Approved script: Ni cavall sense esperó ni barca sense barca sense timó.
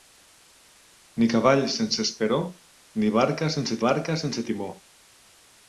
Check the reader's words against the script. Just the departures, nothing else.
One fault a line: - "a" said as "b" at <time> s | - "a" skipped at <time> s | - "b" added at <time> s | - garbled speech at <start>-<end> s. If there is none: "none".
none